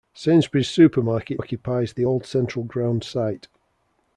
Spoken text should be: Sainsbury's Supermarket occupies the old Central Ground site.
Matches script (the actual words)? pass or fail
pass